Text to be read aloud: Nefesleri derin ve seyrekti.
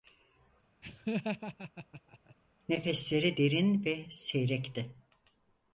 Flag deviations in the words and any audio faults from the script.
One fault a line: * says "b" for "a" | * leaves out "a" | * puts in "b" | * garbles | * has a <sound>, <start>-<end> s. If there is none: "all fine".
* has a laugh, 0.8-2.3 s